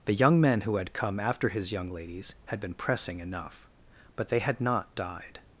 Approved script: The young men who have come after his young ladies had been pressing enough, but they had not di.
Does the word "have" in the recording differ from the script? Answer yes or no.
yes